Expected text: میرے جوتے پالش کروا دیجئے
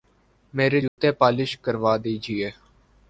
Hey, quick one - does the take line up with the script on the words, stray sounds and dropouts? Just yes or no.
no